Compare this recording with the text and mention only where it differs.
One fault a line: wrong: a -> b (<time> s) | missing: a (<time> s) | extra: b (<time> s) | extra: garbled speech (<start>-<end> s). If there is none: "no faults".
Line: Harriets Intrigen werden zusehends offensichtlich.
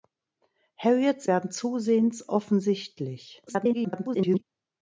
missing: Intrigen (1.3 s)
extra: garbled speech (3.5-4.4 s)